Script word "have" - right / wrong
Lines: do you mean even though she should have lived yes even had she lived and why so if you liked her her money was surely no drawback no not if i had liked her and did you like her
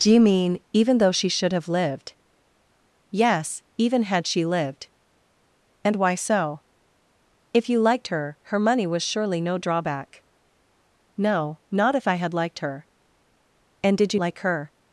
right